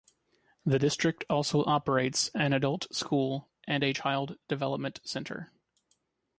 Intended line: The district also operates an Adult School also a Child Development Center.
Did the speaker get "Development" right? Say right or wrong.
right